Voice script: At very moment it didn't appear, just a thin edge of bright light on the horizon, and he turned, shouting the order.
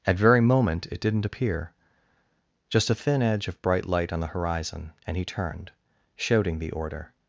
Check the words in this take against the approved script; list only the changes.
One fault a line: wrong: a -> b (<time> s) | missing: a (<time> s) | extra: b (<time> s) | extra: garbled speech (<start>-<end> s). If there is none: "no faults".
no faults